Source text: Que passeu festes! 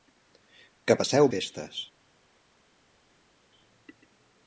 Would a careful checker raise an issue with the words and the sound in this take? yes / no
no